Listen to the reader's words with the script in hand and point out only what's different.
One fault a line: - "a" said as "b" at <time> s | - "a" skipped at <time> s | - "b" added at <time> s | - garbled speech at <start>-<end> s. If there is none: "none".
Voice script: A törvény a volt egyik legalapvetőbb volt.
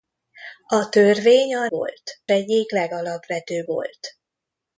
none